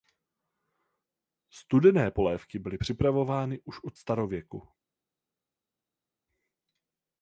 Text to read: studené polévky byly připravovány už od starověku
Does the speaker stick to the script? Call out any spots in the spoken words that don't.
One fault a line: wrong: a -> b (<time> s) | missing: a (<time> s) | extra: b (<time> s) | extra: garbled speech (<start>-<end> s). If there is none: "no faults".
no faults